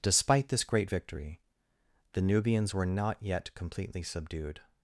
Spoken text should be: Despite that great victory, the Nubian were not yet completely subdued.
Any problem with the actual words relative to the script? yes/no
yes